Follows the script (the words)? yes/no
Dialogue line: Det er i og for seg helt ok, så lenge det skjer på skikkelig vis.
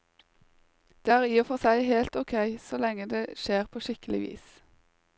yes